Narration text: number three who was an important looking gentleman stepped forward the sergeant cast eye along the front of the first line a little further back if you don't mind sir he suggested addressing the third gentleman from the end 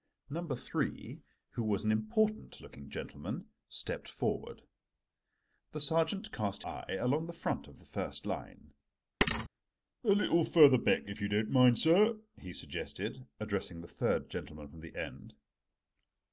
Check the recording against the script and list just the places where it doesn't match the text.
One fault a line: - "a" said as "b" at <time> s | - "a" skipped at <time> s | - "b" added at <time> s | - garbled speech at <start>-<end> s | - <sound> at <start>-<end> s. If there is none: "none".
- thud at 9.2-9.5 s